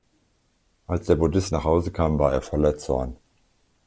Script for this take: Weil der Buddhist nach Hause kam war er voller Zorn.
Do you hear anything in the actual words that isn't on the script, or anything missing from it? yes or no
yes